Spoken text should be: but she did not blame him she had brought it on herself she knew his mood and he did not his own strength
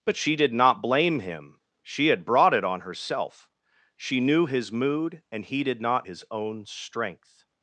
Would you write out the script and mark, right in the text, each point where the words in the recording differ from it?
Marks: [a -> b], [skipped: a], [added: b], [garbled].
but she did not blame him she had brought it on herself she knew his mood and he did not his own strength